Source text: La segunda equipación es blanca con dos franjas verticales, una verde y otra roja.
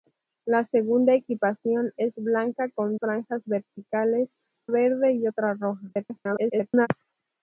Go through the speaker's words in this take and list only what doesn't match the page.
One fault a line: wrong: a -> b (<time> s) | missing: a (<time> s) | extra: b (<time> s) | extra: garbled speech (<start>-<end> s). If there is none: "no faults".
missing: dos (3.0 s)
missing: una (4.3 s)
extra: garbled speech (5.9-6.9 s)